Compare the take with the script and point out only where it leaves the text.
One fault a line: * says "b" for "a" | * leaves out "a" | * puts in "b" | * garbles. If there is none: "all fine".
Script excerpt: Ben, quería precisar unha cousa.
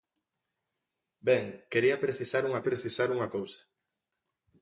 * puts in "precisar unha"